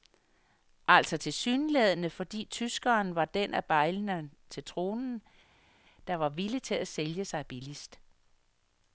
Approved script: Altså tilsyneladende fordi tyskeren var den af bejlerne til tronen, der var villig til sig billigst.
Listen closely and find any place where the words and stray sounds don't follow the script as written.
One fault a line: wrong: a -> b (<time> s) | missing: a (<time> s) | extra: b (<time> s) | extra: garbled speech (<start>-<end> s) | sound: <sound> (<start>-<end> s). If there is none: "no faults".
extra: at sælge (6.7 s)